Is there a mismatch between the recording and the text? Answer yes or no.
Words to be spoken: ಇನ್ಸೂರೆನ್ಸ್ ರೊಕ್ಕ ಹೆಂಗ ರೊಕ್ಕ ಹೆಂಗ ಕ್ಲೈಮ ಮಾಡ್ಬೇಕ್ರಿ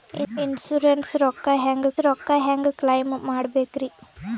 no